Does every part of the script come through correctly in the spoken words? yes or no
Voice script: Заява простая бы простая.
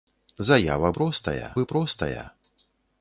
yes